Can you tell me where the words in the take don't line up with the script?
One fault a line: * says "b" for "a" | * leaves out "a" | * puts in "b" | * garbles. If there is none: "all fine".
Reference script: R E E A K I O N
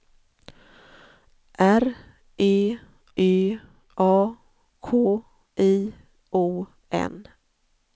all fine